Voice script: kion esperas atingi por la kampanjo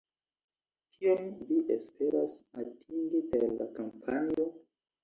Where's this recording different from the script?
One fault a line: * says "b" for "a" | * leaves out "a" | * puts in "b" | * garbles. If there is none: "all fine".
* puts in "vi"
* says "per" for "por"